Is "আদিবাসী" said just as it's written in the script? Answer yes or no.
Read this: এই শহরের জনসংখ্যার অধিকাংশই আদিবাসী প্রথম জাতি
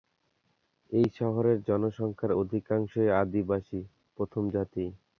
yes